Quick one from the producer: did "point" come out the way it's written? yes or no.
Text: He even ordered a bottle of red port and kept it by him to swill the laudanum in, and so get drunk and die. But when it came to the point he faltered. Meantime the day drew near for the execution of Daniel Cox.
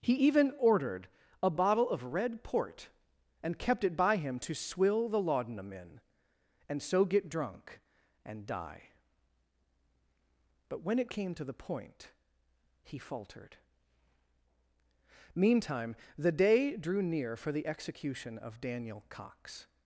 yes